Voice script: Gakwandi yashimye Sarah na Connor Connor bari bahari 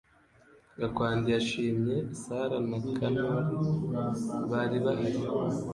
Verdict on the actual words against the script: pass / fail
fail